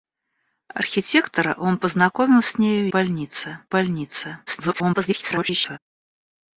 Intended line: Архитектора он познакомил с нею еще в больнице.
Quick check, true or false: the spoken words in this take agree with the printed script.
false